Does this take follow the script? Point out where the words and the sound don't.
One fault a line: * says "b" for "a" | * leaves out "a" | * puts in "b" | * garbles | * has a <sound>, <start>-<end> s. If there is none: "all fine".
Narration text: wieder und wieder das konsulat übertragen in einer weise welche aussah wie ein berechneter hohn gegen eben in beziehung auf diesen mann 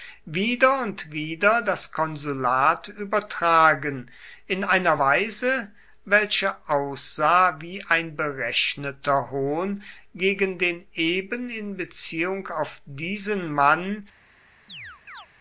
* puts in "den"
* has a chirp, 14.7-15.3 s